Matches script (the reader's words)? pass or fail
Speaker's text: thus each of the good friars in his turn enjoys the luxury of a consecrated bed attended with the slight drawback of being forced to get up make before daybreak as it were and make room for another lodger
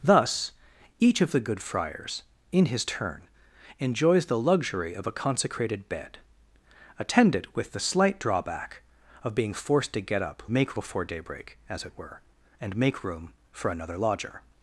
pass